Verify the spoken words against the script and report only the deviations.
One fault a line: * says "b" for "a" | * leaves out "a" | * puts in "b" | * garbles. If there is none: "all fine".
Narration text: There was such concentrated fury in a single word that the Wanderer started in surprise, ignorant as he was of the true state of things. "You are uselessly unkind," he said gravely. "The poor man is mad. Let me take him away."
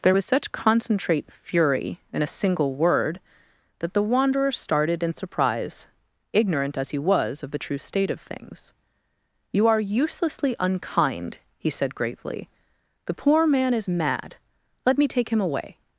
* says "concentrate" for "concentrated"